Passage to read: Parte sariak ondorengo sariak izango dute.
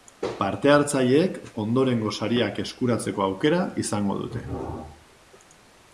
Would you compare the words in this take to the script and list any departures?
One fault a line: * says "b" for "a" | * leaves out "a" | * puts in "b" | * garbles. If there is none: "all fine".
* says "hartzaileek" for "sariak"
* puts in "eskuratzeko aukera"